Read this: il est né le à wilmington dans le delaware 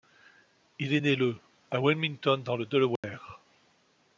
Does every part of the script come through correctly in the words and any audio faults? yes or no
no